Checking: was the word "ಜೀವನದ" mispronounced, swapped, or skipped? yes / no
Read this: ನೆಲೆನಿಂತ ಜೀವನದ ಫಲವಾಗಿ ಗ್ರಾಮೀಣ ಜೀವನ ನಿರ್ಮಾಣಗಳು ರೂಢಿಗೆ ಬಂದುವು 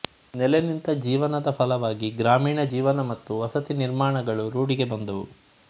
no